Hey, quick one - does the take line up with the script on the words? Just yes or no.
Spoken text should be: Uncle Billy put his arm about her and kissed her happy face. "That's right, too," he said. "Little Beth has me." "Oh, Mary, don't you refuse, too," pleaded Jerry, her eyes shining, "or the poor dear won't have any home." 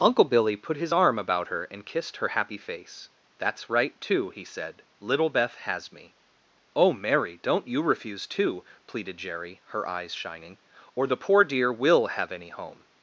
no